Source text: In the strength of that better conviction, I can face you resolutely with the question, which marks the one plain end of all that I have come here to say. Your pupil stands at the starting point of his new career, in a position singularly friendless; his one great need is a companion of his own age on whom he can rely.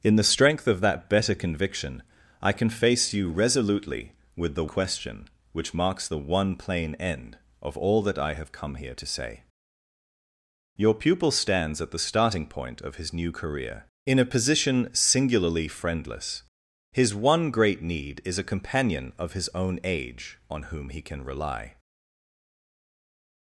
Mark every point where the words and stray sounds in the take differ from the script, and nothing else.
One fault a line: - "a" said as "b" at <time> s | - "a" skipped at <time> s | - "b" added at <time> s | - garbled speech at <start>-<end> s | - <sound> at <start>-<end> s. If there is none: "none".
none